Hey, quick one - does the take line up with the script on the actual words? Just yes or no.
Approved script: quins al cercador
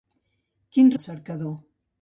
yes